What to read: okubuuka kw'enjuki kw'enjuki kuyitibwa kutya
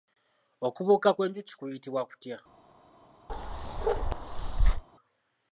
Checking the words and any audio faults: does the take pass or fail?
fail